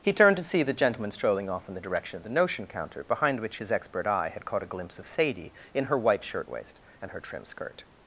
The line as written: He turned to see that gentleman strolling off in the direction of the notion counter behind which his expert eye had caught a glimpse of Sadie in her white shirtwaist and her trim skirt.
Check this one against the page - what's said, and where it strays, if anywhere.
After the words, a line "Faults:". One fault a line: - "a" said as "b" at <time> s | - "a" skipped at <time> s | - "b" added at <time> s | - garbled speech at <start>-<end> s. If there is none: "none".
He turned to see the gentleman strolling off in the direction of the notion counter behind which his expert eye had caught a glimpse of Sadie in her white shirtwaist and her trim skirt.
Faults:
- "that" said as "the" at 0.6 s